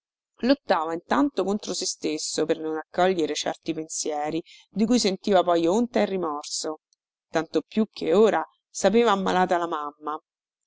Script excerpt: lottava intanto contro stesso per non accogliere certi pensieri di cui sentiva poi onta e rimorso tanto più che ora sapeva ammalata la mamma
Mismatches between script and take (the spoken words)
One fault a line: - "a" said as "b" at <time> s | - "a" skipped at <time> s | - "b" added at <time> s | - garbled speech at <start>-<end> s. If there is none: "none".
- "se" added at 1.8 s